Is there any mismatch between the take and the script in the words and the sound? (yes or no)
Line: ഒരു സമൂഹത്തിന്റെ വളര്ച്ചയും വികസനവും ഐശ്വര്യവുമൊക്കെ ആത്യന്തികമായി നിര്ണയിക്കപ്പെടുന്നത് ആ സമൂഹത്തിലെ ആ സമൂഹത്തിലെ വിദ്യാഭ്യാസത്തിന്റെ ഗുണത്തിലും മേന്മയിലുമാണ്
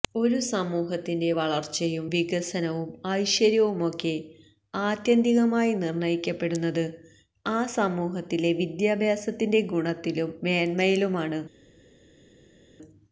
yes